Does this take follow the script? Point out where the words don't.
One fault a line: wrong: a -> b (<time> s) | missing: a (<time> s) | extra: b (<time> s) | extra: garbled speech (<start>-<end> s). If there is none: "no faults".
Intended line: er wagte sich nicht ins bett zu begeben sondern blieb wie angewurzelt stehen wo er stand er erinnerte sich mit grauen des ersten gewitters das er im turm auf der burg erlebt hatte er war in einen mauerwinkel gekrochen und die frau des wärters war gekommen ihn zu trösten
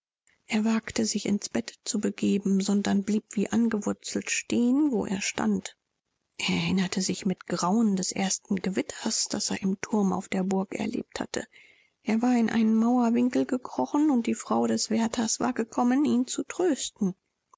missing: nicht (1.3 s)